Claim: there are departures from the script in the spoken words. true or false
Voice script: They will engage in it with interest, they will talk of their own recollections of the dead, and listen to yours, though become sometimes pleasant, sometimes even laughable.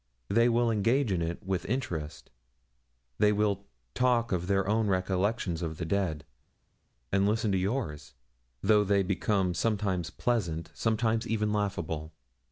true